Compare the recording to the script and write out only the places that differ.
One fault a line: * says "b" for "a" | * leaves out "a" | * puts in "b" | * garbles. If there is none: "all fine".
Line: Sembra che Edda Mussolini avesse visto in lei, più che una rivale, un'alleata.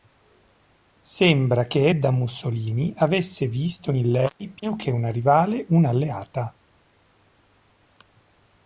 all fine